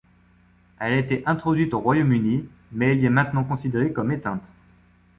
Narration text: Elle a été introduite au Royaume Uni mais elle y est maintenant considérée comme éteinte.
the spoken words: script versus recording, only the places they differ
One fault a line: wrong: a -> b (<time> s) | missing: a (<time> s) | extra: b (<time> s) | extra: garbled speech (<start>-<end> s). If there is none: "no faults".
no faults